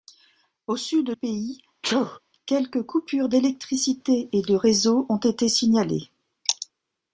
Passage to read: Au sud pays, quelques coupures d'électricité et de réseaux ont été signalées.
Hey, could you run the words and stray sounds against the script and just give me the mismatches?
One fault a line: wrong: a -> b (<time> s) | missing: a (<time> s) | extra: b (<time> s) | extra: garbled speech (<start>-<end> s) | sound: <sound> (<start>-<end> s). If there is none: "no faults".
sound: sneeze (1.8-2.2 s)